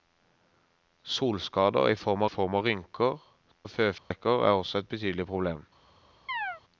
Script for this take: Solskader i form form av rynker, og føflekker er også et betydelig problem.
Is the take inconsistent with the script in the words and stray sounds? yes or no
yes